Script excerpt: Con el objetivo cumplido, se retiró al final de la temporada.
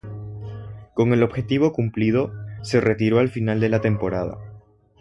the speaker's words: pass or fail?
pass